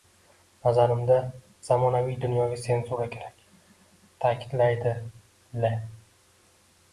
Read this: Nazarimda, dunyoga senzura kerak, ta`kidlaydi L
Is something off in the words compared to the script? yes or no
yes